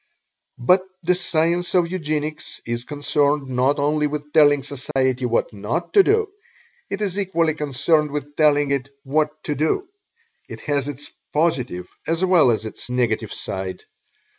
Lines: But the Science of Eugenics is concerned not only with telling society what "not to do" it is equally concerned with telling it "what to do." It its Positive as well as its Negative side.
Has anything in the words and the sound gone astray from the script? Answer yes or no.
yes